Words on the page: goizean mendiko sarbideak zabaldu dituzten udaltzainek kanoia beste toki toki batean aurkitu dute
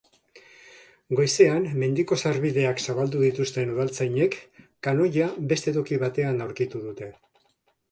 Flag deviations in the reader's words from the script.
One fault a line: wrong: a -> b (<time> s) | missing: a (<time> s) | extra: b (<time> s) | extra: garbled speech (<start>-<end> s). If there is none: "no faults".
missing: toki (6.0 s)